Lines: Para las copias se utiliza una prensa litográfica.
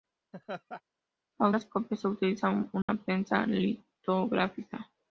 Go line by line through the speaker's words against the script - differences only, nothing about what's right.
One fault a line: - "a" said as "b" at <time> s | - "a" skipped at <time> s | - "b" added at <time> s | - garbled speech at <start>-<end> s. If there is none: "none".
none